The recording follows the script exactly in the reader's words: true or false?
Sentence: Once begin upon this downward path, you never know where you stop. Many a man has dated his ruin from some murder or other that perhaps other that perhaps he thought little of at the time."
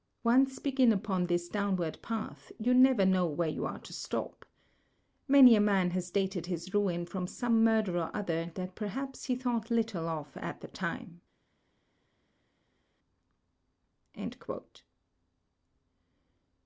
false